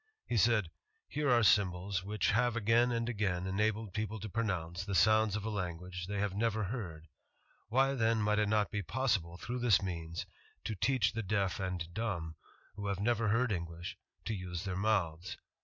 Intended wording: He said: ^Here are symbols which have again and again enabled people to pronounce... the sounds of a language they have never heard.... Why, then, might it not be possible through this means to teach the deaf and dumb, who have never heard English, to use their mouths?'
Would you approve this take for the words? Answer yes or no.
yes